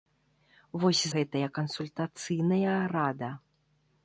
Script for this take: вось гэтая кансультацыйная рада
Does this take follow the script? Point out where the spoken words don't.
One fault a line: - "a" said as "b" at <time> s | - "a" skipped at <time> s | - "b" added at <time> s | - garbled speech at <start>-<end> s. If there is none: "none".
none